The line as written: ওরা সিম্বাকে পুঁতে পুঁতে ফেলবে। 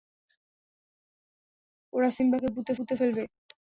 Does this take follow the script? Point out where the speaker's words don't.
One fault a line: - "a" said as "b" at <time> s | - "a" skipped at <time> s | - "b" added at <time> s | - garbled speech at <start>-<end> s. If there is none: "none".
none